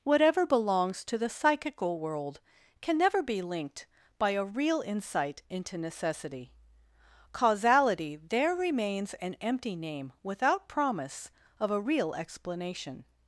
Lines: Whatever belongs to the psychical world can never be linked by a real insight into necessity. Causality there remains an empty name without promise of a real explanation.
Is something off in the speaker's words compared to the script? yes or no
no